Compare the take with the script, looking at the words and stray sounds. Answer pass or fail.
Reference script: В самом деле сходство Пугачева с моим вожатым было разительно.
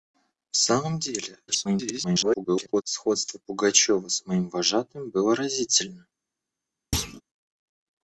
fail